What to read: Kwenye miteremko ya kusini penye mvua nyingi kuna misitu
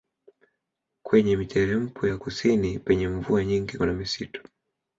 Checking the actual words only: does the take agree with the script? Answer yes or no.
yes